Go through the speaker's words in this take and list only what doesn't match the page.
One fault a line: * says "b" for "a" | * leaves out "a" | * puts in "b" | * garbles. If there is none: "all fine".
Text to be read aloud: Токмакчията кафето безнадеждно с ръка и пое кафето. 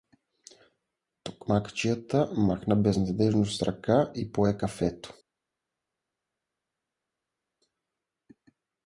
* says "махна" for "кафето"